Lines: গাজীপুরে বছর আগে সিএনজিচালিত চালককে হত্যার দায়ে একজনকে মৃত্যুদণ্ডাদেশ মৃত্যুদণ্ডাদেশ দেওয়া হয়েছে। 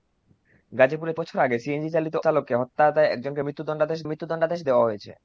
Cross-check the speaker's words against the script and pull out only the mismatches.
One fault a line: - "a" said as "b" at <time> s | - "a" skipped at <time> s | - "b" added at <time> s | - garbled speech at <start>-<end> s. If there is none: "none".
none